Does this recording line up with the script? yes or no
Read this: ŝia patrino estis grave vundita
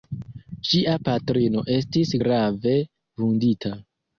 yes